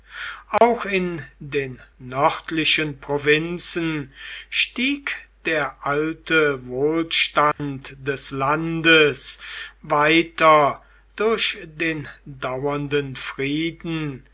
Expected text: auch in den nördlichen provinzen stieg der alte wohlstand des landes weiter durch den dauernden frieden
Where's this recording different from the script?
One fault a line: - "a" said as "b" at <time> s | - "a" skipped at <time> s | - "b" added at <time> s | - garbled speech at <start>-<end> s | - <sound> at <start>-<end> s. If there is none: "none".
- dropout at 0.6-0.6 s
- dropout at 7.5-7.6 s